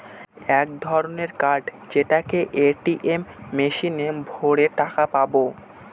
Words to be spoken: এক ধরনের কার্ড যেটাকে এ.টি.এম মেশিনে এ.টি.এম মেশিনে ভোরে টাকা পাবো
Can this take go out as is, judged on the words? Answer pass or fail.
fail